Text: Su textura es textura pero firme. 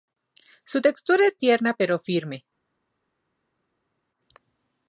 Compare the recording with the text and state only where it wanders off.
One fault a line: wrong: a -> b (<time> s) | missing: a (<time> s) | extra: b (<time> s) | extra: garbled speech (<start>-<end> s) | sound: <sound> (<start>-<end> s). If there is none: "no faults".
wrong: textura -> tierna (1.4 s)